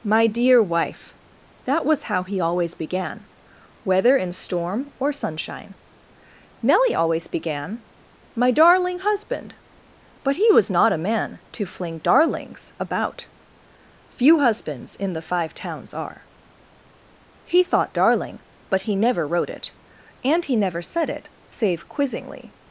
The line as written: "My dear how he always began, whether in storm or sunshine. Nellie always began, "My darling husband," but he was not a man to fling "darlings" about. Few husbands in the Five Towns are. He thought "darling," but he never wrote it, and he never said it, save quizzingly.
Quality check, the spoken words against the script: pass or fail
fail